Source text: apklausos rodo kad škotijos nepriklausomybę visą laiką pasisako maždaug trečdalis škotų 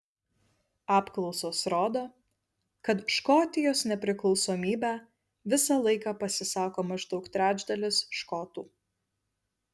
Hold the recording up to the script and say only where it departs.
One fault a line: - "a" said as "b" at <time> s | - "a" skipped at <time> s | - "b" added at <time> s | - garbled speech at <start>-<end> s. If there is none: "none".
none